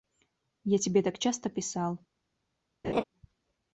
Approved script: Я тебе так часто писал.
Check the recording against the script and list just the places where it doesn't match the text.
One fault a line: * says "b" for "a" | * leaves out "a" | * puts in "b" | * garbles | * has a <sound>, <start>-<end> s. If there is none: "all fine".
* has a laugh, 2.8-3.0 s